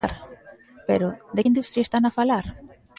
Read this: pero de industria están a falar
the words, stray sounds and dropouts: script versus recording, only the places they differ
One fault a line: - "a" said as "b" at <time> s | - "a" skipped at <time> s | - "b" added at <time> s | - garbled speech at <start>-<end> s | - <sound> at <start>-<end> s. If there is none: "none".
none